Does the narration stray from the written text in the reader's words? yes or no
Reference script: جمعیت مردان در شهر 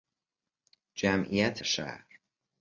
yes